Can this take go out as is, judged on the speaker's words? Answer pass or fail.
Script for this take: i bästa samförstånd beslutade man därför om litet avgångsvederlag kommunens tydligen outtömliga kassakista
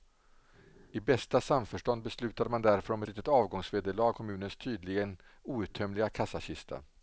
pass